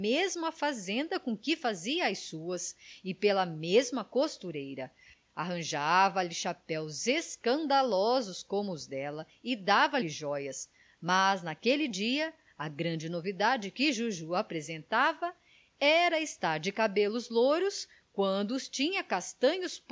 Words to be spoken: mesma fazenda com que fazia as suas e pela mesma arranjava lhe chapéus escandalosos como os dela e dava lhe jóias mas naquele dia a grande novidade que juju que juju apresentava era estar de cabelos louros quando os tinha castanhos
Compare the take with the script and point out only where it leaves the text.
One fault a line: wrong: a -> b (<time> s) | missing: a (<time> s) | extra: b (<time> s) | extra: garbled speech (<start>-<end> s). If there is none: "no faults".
extra: costureira (4.0 s)
missing: que juju (14.3 s)